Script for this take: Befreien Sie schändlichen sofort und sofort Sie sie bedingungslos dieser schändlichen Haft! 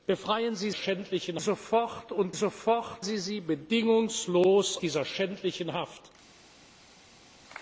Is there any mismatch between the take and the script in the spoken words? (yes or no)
no